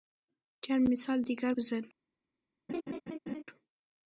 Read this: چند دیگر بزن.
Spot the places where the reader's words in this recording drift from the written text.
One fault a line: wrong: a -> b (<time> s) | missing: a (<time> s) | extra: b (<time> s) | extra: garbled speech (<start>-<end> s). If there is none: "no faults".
extra: مثال (0.9 s)